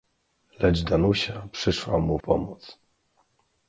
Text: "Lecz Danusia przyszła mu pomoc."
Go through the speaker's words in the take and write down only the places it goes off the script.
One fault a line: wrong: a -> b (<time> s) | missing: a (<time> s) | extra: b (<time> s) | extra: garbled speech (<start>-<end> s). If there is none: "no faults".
no faults